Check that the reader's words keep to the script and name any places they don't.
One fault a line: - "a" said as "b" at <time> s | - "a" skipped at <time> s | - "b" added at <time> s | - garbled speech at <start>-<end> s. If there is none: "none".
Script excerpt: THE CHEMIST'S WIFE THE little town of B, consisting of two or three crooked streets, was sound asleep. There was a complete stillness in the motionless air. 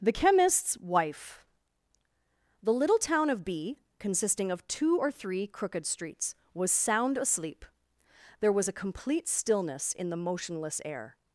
none